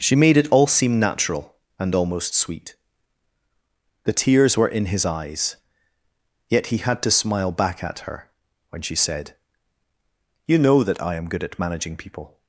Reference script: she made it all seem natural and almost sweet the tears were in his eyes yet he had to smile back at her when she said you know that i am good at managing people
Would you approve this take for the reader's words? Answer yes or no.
yes